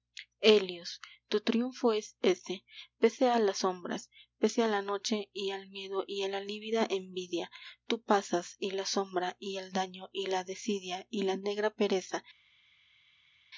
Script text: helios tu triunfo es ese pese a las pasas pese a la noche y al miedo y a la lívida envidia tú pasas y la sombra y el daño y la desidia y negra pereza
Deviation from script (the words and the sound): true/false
true